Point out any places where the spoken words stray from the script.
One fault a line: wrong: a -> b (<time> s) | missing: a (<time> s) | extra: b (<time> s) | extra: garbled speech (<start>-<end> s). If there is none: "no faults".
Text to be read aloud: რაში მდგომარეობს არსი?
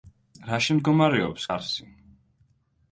no faults